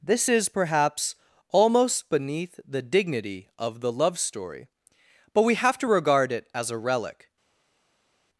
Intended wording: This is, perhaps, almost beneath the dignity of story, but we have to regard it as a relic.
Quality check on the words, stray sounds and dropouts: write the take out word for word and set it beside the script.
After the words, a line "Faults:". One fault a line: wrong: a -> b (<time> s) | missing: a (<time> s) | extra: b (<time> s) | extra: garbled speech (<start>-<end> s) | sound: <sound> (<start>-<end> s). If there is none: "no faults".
This is, perhaps, almost beneath the dignity of the love story, but we have to regard it as a relic.
Faults:
extra: the love (3.8 s)